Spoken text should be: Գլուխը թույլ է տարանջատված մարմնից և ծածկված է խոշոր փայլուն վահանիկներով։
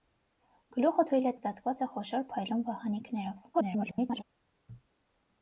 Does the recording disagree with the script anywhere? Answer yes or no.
yes